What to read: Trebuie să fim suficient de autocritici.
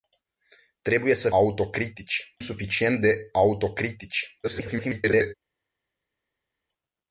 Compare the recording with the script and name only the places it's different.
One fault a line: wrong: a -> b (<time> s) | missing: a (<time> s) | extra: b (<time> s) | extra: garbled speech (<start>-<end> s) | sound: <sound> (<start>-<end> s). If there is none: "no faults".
wrong: fim -> autocritici (1.3 s)
extra: garbled speech (4.4-5.3 s)